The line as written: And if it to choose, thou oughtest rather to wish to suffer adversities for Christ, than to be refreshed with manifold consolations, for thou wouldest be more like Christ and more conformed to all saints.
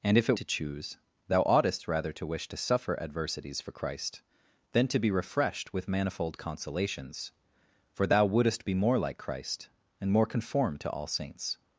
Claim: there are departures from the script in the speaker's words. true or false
false